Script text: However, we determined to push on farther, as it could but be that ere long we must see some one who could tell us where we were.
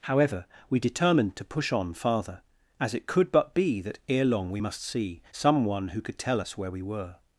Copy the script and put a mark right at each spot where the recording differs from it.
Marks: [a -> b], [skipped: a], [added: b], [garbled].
However, we determined to push on farther, as it could but be that ere long we must see some one who could tell us where we were.